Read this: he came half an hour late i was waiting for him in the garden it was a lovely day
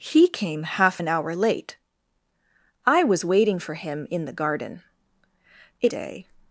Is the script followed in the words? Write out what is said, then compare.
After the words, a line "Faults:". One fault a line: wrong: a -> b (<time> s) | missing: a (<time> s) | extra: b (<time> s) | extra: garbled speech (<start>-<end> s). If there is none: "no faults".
he came half an hour late i was waiting for him in the garden it day
Faults:
missing: was a lovely (5.9 s)